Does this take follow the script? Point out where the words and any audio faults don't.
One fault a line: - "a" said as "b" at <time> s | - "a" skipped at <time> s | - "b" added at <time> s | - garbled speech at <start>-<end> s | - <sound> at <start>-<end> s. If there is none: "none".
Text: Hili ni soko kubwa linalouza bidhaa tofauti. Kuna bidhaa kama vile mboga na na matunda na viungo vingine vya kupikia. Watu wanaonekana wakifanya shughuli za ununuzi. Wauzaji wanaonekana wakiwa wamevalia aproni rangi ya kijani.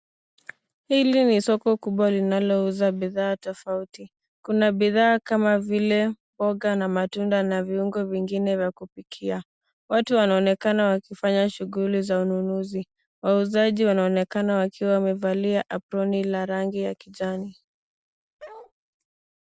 - "na" skipped at 6.9 s
- "la" added at 16.2 s
- bark at 18.4-18.7 s